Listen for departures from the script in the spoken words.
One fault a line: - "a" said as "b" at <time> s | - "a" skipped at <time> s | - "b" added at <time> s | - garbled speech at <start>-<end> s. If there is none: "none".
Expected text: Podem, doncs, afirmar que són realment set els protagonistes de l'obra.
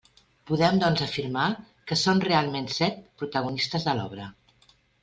- "els" skipped at 3.0 s